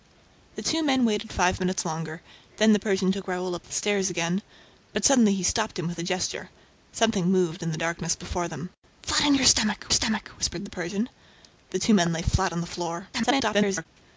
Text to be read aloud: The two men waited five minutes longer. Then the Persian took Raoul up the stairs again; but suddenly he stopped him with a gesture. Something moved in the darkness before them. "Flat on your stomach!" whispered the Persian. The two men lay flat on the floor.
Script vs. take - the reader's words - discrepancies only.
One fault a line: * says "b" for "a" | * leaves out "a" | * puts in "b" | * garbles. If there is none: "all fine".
* puts in "stomach"
* garbles